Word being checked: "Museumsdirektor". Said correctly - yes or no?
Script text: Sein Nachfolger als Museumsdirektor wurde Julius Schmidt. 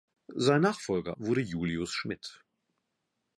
no